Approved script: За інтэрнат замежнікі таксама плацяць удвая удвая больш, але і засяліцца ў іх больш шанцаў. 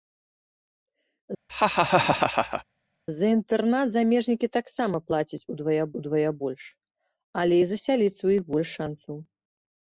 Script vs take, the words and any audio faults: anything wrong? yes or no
yes